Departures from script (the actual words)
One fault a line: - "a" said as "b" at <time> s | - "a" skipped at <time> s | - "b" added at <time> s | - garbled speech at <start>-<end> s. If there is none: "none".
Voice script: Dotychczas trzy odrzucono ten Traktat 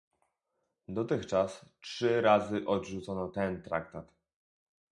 - "razy" added at 2.2 s